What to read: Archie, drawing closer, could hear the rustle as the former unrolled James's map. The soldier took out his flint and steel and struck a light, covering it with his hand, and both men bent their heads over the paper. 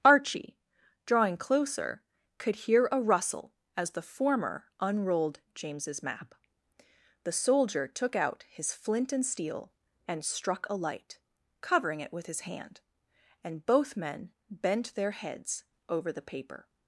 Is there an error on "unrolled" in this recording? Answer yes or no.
no